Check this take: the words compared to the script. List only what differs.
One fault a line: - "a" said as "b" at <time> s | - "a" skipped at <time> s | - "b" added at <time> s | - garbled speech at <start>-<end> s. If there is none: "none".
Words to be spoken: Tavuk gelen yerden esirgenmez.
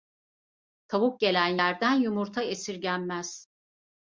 - "yumurta" added at 1.9 s